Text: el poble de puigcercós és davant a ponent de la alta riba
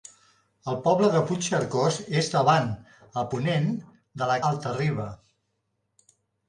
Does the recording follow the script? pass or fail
pass